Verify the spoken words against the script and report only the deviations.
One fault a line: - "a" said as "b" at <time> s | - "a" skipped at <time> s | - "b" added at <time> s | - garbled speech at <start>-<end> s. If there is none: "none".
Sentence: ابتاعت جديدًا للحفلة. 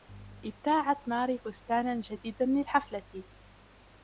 - "ماري فستانًا" added at 1.1 s